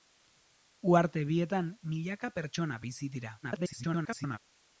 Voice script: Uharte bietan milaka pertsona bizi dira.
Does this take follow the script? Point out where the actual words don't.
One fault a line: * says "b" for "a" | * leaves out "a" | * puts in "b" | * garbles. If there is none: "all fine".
* garbles